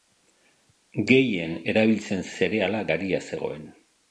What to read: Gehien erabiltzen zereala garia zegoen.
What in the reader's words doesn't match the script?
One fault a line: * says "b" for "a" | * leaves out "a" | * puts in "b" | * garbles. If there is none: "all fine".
all fine